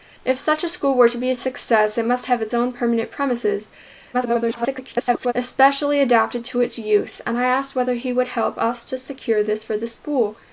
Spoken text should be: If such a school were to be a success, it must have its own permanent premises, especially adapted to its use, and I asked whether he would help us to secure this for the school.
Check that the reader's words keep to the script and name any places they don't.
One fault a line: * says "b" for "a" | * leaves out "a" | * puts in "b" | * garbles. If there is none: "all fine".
* garbles